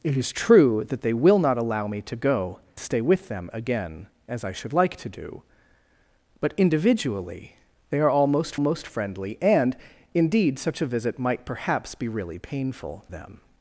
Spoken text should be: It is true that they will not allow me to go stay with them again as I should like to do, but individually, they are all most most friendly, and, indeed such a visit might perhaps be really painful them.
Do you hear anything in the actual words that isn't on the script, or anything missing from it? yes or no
no